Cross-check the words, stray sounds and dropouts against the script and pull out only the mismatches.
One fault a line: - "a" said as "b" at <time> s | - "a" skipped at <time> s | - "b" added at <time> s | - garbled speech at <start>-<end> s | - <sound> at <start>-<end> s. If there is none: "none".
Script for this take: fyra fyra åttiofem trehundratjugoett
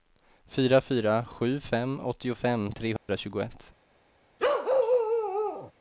- "sju fem" added at 1.2 s
- dropout at 3.0-3.1 s
- bark at 4.4-5.7 s